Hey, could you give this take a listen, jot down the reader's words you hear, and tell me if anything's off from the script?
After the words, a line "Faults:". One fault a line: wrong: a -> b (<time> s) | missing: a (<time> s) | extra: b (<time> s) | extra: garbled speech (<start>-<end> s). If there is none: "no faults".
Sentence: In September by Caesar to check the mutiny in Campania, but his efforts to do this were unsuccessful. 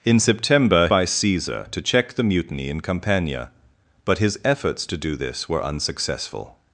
In September by Caesar to check the mutiny in Campania, but his efforts to do this were unsuccessful.
Faults:
no faults